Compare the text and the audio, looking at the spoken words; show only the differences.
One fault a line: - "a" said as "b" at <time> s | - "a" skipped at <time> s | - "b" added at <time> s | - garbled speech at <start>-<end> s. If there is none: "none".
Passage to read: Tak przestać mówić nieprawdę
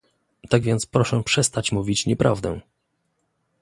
- "więc proszę" added at 0.6 s